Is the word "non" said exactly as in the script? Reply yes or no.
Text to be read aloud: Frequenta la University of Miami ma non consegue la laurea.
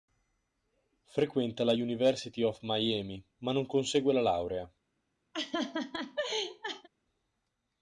yes